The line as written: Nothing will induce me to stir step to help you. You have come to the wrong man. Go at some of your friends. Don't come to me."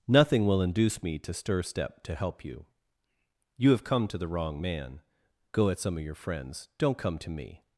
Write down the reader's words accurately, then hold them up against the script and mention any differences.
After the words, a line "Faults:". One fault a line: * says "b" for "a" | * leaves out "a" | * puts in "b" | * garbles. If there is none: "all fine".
Nothing will induce me to stir step to help you. You have come to the wrong man. Go at some of your friends. Don't come to me."
Faults:
all fine